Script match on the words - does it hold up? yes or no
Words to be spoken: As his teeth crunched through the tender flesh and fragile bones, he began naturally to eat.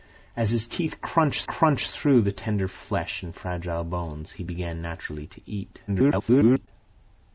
no